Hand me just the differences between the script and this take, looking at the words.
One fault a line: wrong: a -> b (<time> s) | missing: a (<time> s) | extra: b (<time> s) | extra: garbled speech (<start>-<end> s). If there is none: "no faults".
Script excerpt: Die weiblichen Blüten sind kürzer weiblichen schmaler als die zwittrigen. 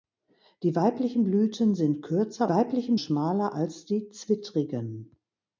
no faults